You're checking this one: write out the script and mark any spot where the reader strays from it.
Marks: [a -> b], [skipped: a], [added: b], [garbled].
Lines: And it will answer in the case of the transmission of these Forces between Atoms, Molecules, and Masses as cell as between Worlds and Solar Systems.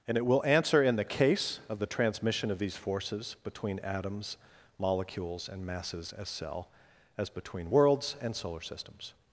And it will answer in the case of the transmission of these Forces between Atoms, Molecules, and Masses as cell as between Worlds and Solar Systems.